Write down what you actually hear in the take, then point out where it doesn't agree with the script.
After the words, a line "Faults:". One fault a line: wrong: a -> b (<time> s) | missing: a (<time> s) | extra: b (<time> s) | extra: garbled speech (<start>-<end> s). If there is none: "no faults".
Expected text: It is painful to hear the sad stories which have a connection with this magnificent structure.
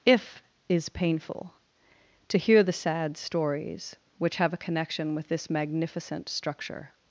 If is painful to hear the sad stories which have a connection with this magnificent structure.
Faults:
wrong: It -> If (0.1 s)